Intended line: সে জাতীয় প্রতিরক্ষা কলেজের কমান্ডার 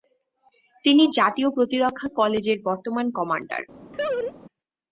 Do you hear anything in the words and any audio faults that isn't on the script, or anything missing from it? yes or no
yes